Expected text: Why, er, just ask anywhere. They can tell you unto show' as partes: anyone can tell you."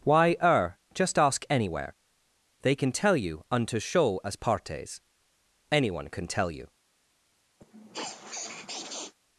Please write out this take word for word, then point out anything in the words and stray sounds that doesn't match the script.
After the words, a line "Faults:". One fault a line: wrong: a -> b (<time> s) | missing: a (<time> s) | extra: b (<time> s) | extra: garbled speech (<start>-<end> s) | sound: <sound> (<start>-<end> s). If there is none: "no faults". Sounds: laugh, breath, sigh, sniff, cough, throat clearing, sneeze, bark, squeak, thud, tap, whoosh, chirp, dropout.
Why, er, just ask anywhere. They can tell you unto show' as partes: anyone can tell you."
Faults:
sound: sniff (7.6-9.1 s)